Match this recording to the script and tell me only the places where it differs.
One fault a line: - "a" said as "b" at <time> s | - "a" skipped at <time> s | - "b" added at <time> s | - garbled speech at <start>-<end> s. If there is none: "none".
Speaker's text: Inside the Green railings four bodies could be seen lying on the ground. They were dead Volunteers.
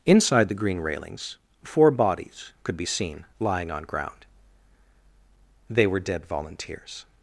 - "the" skipped at 3.8 s